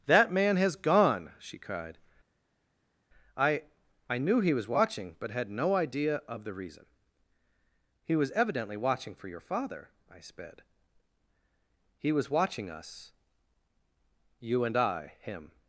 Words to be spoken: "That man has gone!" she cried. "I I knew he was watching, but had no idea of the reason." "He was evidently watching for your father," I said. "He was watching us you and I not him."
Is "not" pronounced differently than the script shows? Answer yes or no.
yes